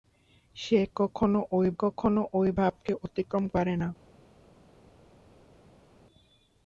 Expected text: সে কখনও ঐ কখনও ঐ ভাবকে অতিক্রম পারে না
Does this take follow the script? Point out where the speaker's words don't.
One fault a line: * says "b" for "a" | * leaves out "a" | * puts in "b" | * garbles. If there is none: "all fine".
all fine